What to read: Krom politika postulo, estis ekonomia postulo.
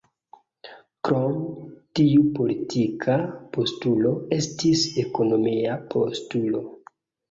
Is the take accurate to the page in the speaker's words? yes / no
no